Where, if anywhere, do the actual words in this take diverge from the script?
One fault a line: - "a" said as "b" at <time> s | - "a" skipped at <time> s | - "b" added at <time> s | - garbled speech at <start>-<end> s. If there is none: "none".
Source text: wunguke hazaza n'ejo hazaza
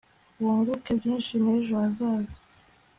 - "hazaza" said as "byinshi" at 1.0 s